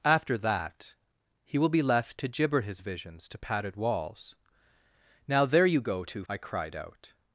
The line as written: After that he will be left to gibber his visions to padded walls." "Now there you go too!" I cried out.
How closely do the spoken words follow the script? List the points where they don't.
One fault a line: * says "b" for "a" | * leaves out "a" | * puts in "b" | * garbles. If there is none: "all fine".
all fine